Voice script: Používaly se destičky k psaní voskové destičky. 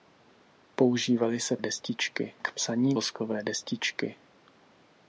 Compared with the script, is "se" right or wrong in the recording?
right